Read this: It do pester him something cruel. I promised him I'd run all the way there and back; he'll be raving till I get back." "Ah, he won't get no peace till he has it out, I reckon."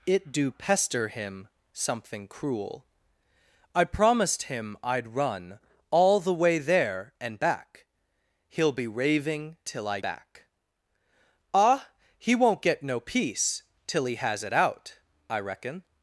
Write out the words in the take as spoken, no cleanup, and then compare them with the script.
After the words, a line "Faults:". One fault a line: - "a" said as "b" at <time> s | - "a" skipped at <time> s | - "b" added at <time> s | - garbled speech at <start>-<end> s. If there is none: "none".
It do pester him something cruel. I promised him I'd run all the way there and back; he'll be raving till I back." "Ah, he won't get no peace till he has it out, I reckon."
Faults:
- "get" skipped at 10.0 s